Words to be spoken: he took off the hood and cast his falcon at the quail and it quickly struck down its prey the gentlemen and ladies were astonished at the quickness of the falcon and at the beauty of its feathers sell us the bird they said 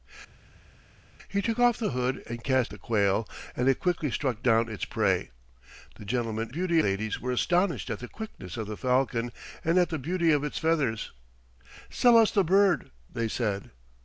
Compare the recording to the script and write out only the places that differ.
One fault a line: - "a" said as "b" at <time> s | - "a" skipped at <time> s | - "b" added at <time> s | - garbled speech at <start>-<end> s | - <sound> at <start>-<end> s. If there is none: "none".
- "his falcon at" skipped at 2.7 s
- "and" said as "beauty" at 6.5 s